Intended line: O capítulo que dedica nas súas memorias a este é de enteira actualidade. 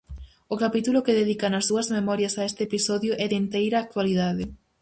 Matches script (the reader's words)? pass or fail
fail